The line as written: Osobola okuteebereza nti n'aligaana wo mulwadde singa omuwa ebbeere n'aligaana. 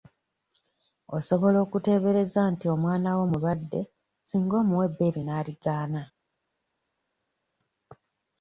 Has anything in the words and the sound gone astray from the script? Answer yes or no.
yes